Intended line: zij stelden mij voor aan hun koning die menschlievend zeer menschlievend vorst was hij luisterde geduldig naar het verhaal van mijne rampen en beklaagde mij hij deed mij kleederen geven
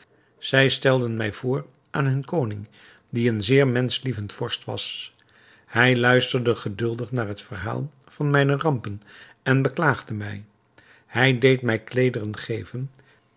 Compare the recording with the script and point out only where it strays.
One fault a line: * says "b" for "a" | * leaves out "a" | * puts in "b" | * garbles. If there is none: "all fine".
* says "een" for "menschlievend"